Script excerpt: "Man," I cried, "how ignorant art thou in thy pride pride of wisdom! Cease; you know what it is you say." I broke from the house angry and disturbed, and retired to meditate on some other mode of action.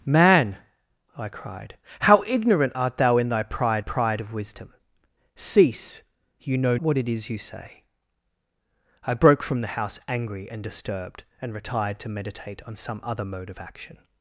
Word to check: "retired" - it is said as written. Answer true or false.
true